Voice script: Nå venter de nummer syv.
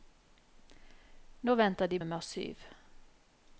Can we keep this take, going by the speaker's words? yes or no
yes